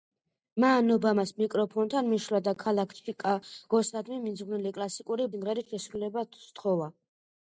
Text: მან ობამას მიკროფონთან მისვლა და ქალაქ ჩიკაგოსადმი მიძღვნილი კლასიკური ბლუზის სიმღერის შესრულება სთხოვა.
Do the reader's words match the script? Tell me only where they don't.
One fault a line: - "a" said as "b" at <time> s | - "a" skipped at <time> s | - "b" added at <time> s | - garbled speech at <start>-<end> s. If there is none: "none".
- "ბლუზის" skipped at 5.3 s